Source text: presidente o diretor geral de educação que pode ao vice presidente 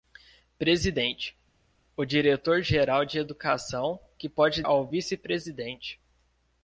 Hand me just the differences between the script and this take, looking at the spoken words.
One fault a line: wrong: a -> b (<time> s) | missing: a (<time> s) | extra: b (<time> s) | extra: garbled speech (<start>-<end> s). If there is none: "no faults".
no faults